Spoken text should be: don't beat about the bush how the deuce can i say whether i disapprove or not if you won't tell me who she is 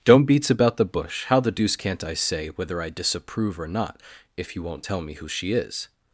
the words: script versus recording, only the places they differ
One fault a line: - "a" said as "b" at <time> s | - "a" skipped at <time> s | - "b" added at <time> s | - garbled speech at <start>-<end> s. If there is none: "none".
- "beat" said as "beats" at 0.2 s
- "can" said as "can't" at 1.8 s